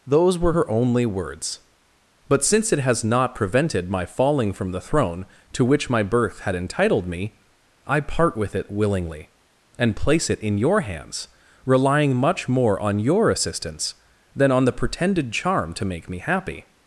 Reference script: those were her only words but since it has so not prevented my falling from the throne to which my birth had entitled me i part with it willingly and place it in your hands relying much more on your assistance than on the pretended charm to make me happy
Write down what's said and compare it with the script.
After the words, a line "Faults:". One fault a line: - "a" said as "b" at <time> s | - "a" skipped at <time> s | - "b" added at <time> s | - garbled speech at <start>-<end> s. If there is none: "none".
those were her only words but since it has not prevented my falling from the throne to which my birth had entitled me i part with it willingly and place it in your hands relying much more on your assistance than on the pretended charm to make me happy
Faults:
- "so" skipped at 3.0 s